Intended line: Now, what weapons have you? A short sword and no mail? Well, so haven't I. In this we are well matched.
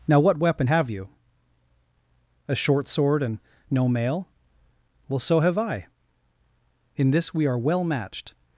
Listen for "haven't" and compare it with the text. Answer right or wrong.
wrong